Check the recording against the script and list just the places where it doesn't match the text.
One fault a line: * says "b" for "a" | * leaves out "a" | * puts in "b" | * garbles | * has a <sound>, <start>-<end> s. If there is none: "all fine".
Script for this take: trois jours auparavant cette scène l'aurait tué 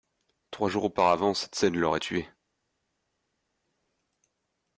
all fine